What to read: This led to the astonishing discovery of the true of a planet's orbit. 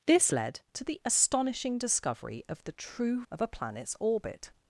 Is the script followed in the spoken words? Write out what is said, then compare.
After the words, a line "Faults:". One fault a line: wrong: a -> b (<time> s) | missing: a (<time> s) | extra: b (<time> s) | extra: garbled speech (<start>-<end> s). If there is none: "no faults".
This led to the astonishing discovery of the true of a planet's orbit.
Faults:
no faults